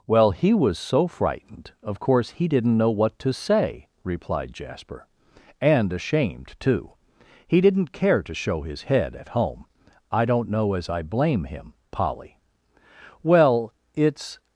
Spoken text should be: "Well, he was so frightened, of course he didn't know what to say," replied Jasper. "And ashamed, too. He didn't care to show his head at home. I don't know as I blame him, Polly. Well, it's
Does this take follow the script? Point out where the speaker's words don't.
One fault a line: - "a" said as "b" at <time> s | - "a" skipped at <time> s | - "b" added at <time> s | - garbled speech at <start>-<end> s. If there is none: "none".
none